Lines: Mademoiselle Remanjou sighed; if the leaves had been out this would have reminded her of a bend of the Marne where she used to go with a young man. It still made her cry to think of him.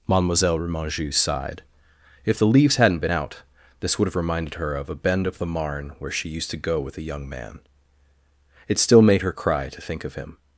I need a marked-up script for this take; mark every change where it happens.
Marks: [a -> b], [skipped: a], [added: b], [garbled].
Mademoiselle Remanjou sighed; if the leaves [had -> hadn't] been out this would have reminded her of a bend of the Marne where she used to go with a young man. It still made her cry to think of him.